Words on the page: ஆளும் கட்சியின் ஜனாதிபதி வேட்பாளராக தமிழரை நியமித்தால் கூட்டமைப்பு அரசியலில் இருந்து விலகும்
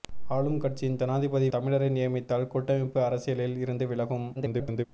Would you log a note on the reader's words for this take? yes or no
yes